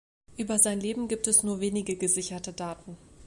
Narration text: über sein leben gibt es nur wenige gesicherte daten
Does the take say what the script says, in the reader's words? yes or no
yes